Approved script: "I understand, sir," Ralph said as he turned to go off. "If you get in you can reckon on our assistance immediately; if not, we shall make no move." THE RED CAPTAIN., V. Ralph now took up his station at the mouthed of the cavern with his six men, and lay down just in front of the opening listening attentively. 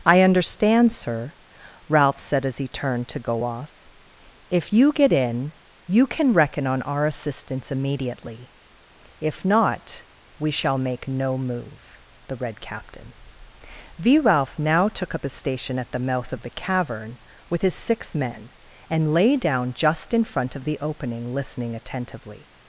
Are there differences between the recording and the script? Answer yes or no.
yes